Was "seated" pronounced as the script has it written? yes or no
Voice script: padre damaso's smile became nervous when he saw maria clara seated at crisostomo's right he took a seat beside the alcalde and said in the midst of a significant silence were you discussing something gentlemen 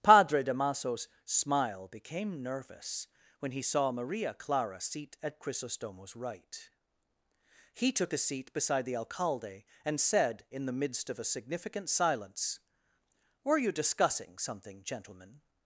no